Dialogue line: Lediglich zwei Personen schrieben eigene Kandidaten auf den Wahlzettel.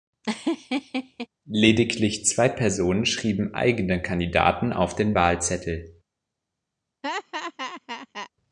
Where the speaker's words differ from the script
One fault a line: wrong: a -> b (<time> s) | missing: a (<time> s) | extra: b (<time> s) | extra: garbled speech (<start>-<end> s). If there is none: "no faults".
no faults